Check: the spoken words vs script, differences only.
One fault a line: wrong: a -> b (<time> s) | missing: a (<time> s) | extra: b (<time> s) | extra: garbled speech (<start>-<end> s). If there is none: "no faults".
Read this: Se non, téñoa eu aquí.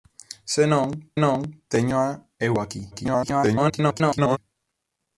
extra: non (1.2 s)
extra: garbled speech (2.9-4.4 s)